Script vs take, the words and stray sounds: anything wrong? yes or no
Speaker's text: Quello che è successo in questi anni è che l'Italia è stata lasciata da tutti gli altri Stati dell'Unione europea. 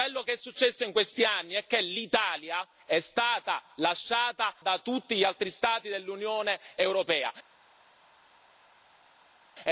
no